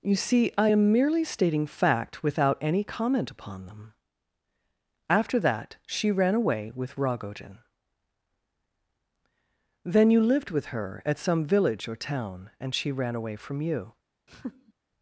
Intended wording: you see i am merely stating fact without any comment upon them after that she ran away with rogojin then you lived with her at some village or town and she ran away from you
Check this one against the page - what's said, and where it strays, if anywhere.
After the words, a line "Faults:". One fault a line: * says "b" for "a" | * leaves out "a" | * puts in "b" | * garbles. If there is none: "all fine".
you see i am merely stating fact without any comment upon them after that she ran away with rogojin then you lived with her at some village or town and she ran away from you
Faults:
all fine